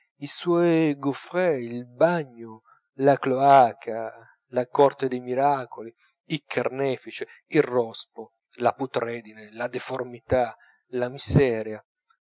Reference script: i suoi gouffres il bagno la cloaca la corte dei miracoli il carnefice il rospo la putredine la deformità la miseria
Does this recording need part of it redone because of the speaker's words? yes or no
no